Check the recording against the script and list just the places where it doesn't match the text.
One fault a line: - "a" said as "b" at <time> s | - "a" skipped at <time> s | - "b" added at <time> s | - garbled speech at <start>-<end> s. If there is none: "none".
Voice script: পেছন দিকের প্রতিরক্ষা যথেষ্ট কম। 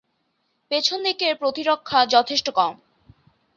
none